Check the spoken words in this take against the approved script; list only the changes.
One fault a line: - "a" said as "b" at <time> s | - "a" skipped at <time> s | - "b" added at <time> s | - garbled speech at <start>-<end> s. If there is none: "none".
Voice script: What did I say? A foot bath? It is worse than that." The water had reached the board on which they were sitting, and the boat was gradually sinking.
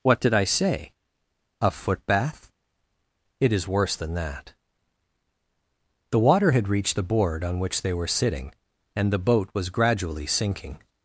none